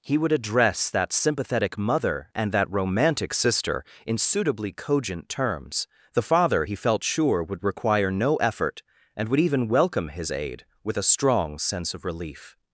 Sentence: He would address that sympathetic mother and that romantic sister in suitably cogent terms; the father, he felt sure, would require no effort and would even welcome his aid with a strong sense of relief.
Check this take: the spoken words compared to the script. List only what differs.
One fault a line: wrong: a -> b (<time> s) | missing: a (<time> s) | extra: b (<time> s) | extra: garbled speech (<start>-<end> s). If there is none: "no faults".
no faults